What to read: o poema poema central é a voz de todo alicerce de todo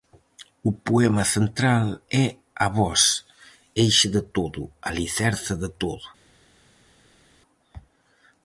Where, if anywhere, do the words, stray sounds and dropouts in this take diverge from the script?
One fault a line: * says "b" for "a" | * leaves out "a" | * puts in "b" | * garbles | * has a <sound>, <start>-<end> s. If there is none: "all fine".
* leaves out "poema"
* puts in "eixe"